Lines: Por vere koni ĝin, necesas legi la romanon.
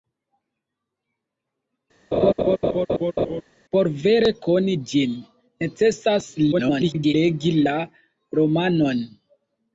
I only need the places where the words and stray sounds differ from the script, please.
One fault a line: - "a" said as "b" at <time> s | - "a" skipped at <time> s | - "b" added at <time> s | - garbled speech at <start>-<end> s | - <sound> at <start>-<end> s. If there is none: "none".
- laugh at 2.1-3.4 s
- garbled speech at 6.5-7.1 s